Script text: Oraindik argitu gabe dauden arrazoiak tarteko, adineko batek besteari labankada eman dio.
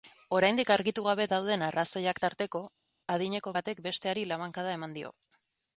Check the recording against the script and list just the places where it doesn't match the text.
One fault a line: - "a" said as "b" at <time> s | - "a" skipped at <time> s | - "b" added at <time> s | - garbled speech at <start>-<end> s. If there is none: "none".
none